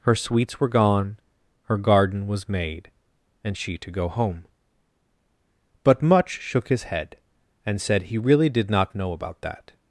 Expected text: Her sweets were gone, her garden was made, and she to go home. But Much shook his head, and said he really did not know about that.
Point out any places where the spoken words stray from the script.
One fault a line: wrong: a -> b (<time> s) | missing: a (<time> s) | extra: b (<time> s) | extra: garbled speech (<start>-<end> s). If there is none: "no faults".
no faults